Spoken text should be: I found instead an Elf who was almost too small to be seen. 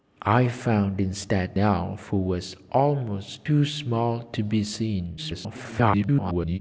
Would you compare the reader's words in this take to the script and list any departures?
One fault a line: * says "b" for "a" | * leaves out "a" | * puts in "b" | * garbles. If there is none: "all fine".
* leaves out "an"
* garbles